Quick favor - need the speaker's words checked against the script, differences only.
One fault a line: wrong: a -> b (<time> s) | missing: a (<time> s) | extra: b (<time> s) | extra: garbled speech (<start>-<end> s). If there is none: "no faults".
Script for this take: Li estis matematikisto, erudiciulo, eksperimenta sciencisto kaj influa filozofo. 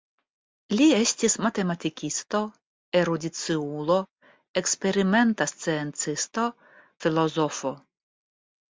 missing: kaj influa (6.5 s)